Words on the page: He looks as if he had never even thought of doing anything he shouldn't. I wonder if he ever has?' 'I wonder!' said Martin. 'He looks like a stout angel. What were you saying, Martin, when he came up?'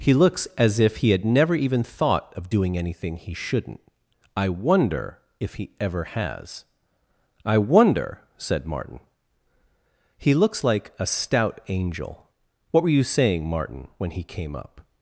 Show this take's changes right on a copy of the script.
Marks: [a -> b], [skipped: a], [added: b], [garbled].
He looks as if he had never even thought of doing anything he shouldn't. I wonder if he ever has?' 'I wonder!' said Martin. 'He looks like a stout angel. What were you saying, Martin, when he came up?'